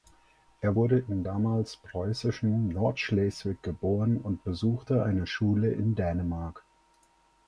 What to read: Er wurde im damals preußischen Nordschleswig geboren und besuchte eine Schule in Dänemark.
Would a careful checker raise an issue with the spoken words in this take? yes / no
no